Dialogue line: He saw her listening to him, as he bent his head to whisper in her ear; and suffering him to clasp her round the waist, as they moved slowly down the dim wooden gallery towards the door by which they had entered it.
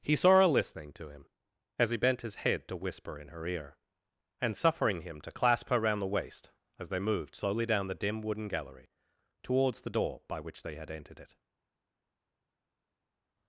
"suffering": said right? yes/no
yes